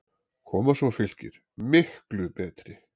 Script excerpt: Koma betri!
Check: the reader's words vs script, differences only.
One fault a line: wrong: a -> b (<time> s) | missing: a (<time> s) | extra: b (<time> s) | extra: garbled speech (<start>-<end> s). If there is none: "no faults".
extra: svo Fylkir MIKLU (0.8 s)